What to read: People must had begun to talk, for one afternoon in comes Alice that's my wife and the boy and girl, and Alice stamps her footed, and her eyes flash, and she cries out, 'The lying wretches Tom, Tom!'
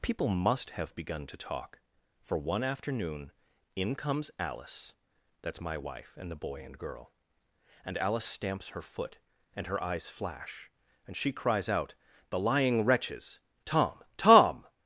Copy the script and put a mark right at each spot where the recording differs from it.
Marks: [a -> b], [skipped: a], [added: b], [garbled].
People must [had -> have] begun to talk, for one afternoon in comes Alice that's my wife and the boy and girl, and Alice stamps her [footed, -> foot] and her eyes flash, and she cries out, 'The lying wretches Tom, Tom!'